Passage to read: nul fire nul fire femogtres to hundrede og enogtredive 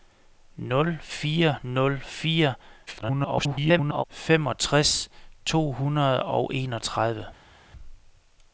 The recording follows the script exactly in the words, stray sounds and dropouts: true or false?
false